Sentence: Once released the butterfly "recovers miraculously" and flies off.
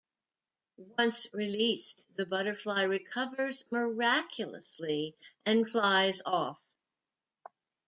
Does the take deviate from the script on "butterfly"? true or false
false